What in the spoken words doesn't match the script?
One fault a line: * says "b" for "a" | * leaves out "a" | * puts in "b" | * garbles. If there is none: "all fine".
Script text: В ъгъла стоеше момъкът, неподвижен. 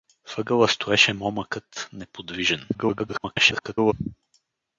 * garbles